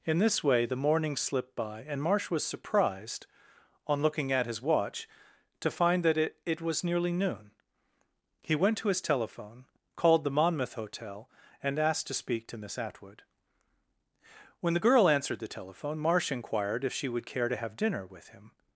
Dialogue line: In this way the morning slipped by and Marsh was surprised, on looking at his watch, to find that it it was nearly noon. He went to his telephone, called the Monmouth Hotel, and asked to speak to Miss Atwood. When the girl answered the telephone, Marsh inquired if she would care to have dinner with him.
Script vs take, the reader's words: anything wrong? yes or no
no